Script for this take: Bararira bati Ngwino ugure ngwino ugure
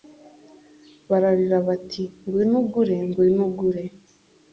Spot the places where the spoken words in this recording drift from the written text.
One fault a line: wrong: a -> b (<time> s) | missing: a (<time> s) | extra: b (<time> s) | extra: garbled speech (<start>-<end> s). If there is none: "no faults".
no faults